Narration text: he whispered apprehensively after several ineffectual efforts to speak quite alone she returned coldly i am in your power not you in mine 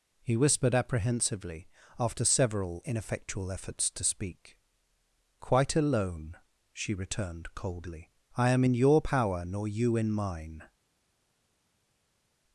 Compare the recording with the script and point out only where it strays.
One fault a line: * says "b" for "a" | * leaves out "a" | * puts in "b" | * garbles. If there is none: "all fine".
* says "nor" for "not"